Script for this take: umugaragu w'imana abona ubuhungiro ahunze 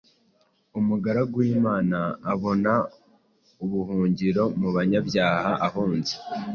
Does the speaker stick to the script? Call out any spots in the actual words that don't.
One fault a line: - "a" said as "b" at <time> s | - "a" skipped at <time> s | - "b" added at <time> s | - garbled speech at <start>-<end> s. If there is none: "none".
- "mu banyabyaha" added at 4.6 s